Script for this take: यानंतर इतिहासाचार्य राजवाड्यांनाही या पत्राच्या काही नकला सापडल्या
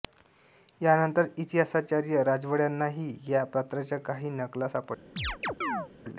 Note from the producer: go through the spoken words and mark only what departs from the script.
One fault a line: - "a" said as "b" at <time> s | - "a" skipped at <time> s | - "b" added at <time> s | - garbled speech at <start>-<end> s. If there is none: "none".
none